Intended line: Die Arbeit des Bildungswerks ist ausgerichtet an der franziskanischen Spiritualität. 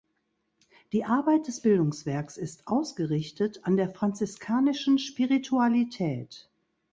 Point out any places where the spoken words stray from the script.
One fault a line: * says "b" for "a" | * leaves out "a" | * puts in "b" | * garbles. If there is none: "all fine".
all fine